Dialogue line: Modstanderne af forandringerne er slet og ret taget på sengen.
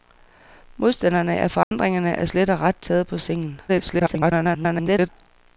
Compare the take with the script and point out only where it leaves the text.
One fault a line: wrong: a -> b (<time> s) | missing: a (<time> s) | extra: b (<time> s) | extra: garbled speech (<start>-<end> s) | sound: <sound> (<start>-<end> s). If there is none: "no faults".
sound: dropout (1.6-1.7 s)
extra: garbled speech (3.7-5.1 s)